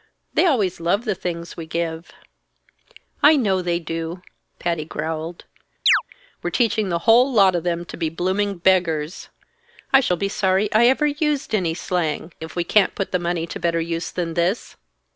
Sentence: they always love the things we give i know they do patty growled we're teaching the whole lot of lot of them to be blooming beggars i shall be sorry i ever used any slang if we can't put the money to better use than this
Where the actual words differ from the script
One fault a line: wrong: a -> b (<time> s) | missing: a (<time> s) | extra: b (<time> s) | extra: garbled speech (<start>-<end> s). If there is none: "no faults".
missing: lot of (7.7 s)